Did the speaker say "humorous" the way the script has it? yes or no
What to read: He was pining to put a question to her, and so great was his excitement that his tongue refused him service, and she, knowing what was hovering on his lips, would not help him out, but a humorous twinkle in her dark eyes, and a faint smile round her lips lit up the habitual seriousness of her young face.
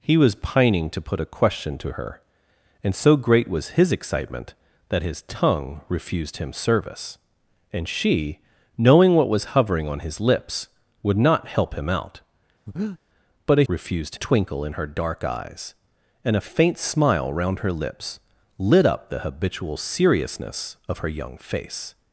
no